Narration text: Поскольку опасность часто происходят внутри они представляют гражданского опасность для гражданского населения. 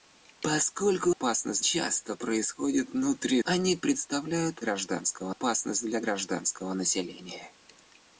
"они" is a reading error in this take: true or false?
false